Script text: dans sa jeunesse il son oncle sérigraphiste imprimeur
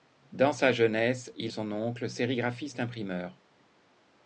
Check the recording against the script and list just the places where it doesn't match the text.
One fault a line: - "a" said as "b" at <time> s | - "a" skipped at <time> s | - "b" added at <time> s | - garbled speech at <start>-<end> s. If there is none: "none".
none